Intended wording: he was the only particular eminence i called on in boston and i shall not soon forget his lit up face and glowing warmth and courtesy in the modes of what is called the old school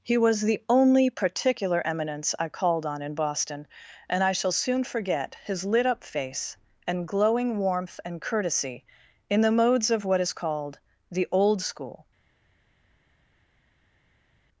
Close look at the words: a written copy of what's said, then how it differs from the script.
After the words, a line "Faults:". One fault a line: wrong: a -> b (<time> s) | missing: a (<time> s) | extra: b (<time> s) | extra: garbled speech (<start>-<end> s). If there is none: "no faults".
he was the only particular eminence i called on in boston and i shall soon forget his lit up face and glowing warmth and courtesy in the modes of what is called the old school
Faults:
missing: not (4.5 s)